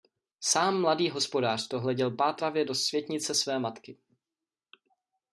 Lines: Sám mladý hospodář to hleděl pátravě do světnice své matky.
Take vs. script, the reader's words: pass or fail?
pass